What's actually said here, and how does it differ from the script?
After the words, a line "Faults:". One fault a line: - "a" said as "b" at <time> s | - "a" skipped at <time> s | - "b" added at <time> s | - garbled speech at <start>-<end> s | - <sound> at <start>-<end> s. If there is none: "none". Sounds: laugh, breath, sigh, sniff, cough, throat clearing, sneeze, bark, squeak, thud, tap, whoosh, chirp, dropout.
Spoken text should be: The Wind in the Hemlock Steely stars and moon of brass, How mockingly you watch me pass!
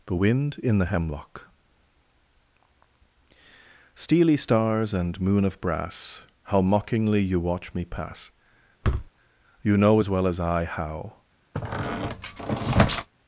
The Wind in the Hemlock Steely stars and moon of brass, How mockingly you watch me pass! You know as well as I how
Faults:
- thud at 8.8-9.1 s
- "You know as well as I how" added at 9.6 s
- squeak at 11.5-13.1 s